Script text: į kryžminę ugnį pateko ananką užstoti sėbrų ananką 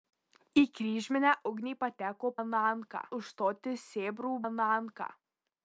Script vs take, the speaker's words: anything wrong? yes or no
no